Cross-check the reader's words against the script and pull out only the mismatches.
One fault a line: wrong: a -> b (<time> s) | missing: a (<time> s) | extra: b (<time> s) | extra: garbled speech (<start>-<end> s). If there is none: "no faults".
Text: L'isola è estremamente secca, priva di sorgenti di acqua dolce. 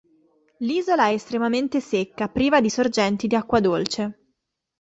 no faults